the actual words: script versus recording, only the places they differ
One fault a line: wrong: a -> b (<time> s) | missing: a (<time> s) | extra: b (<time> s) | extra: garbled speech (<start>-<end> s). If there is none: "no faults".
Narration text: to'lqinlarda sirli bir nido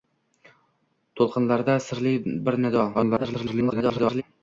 extra: garbled speech (2.9-4.2 s)